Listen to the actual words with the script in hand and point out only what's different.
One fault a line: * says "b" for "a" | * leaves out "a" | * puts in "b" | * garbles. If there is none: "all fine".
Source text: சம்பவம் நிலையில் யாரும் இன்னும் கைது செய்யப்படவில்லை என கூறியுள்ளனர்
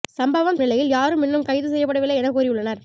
all fine